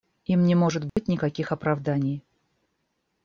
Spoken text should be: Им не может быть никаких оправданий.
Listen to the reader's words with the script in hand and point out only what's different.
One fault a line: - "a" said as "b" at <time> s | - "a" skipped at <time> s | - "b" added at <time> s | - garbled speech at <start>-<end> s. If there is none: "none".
none